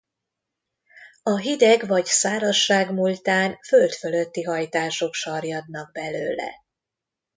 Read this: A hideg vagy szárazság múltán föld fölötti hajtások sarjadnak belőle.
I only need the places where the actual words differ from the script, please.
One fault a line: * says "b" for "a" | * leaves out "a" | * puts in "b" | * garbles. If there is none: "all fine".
all fine